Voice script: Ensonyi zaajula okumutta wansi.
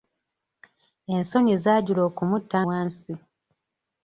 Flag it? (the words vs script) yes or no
no